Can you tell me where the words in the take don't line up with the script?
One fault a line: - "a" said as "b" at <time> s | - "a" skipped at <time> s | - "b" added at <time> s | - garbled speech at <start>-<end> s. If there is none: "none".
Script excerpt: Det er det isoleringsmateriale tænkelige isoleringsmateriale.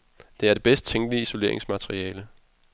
- "isoleringsmateriale" said as "bedst" at 0.6 s